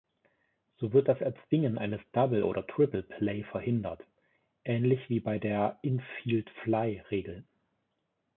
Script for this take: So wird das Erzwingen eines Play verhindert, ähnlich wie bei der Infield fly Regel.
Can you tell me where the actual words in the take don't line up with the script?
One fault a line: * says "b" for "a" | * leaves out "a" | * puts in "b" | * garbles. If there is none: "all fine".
* puts in "Double oder Triple"